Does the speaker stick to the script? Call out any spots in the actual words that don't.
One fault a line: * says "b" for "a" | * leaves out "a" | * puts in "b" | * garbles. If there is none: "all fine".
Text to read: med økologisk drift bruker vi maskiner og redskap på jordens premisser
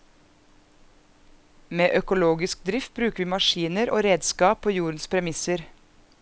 all fine